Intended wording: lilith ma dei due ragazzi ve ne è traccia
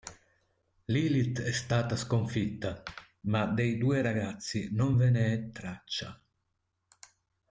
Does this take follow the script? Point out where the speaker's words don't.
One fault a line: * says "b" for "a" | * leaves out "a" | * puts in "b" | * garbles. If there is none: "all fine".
* puts in "è stata sconfitta"
* puts in "non"